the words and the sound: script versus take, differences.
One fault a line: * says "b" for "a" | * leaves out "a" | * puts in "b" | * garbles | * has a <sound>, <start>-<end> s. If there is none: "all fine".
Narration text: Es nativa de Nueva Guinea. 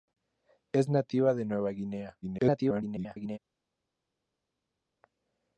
* garbles